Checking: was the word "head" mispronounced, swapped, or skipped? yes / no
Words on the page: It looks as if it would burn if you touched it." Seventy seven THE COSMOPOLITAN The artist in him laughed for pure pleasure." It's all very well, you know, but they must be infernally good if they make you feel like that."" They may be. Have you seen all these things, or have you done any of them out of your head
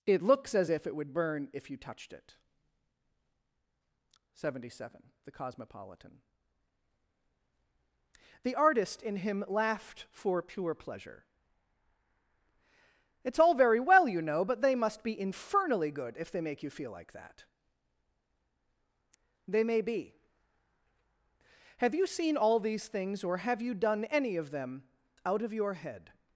no